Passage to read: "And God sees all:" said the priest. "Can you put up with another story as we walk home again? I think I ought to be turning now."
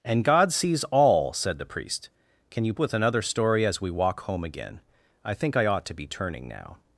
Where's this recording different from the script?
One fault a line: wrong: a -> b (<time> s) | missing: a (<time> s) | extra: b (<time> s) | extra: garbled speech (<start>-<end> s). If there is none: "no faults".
missing: put up (2.7 s)